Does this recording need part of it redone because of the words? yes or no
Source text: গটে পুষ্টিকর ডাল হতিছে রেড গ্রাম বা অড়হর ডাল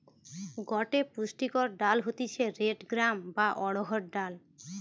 no